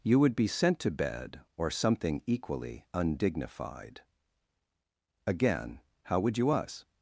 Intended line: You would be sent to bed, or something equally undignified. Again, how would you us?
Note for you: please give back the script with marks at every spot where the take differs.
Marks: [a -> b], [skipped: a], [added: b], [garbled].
You would be sent to bed, or something equally undignified. Again, how would you us?